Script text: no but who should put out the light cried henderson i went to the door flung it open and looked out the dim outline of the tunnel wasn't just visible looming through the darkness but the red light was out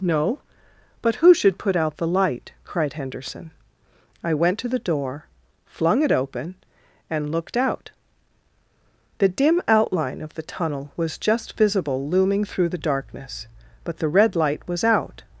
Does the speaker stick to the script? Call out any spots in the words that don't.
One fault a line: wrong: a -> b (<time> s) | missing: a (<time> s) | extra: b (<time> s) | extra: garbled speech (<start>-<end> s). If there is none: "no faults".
wrong: wasn't -> was (11.0 s)